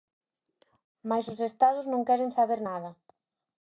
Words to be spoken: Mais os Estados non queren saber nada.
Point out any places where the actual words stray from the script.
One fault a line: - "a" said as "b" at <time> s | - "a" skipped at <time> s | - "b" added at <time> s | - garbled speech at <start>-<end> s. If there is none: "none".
none